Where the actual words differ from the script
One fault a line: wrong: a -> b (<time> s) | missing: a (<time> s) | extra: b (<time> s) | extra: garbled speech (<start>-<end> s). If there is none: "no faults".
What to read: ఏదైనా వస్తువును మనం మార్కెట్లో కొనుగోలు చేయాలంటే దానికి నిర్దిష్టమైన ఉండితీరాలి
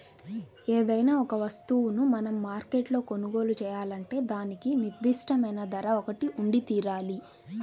extra: ఒక (1.2 s)
extra: ధర ఒకటి (5.7 s)